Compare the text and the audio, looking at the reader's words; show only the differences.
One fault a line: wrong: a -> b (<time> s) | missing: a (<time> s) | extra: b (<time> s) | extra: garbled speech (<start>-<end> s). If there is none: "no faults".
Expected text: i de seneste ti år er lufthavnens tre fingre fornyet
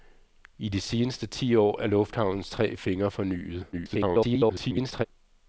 extra: garbled speech (3.7-5.1 s)